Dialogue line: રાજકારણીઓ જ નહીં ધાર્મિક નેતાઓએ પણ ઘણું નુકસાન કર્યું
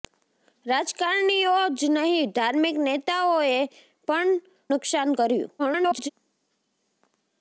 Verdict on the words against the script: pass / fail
fail